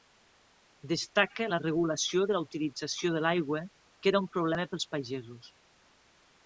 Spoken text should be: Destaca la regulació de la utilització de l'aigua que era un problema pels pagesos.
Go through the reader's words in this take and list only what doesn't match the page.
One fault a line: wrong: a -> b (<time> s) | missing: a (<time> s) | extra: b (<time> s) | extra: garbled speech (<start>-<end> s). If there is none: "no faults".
no faults